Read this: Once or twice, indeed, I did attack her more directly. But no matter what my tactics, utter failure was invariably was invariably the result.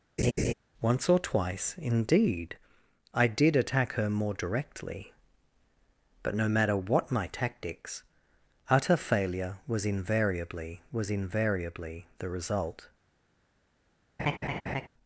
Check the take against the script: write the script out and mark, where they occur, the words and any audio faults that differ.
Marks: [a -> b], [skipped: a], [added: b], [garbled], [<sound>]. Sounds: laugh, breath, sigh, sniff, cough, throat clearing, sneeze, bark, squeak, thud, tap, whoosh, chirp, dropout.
[laugh] Once or twice, indeed, I did attack her more directly. But no matter what my tactics, utter failure was invariably was invariably the result. [laugh]